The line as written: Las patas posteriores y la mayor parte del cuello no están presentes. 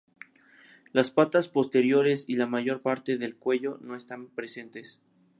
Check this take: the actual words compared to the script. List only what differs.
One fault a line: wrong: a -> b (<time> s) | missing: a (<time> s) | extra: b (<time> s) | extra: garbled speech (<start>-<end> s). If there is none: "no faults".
no faults